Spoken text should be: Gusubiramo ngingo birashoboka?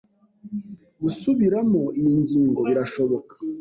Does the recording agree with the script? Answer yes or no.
no